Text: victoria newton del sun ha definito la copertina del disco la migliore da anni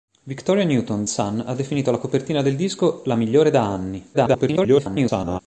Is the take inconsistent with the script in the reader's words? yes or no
yes